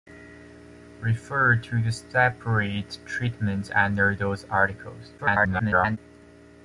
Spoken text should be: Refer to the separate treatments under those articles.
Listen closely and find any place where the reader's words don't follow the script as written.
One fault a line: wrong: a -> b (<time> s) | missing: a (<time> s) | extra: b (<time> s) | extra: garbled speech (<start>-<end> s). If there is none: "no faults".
extra: garbled speech (5.2-6.0 s)